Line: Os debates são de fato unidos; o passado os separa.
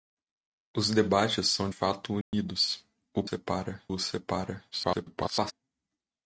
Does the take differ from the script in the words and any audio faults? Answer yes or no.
yes